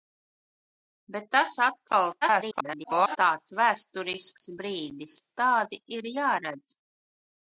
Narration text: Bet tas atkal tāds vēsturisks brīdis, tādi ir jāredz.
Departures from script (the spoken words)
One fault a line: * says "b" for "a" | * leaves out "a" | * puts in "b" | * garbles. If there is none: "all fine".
* garbles